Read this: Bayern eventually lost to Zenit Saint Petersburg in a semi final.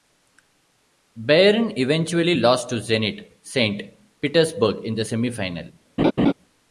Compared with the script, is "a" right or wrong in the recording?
wrong